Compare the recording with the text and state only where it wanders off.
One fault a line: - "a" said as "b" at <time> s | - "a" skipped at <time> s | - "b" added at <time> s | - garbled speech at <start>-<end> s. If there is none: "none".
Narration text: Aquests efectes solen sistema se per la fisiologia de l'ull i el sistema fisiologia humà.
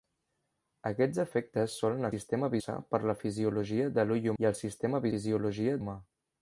none